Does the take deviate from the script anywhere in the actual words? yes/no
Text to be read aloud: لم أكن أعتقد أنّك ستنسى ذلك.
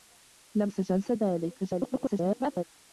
yes